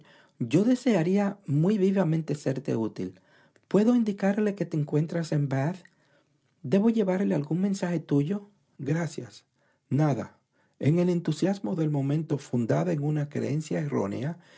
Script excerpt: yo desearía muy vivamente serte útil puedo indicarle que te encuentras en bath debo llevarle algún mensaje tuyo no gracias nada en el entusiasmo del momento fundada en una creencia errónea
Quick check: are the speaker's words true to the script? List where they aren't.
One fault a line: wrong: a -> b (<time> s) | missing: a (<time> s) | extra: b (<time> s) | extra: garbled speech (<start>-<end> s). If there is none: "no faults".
missing: no (8.5 s)